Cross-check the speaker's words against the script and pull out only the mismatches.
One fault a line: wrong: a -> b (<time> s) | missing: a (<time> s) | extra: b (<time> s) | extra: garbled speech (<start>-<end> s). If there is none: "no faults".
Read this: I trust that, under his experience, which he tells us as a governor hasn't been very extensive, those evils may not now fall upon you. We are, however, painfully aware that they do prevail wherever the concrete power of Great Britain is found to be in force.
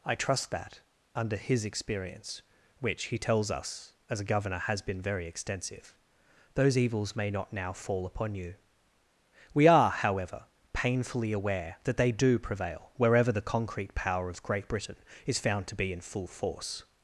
wrong: hasn't -> has (4.6 s)
extra: full (16.0 s)